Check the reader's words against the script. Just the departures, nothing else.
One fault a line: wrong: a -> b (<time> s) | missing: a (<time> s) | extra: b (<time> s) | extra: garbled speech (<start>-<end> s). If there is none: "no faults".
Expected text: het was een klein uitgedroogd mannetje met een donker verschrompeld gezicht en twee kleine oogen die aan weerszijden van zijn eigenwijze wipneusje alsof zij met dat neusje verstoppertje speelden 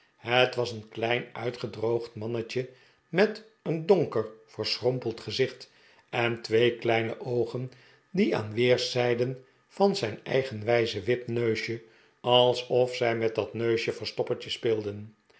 no faults